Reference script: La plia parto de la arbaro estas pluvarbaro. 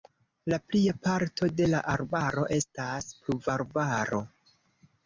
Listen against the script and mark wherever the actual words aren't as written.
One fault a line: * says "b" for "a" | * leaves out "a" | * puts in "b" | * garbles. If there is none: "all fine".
all fine